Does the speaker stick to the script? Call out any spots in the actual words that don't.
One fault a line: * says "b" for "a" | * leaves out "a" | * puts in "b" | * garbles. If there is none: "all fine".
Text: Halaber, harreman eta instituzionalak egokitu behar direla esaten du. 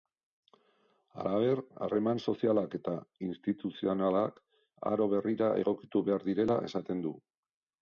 * puts in "sozialak"
* puts in "aro berrira"